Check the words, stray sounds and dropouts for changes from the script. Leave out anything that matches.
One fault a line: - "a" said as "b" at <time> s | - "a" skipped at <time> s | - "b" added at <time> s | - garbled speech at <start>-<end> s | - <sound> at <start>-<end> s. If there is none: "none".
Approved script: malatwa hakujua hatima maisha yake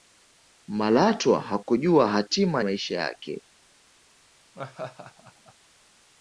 - laugh at 4.5-5.5 s